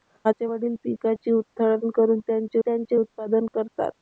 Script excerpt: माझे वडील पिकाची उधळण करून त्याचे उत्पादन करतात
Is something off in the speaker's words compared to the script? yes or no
yes